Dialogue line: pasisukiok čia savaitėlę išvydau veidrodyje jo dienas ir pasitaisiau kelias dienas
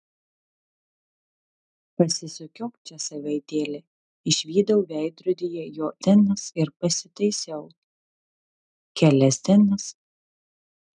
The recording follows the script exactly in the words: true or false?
true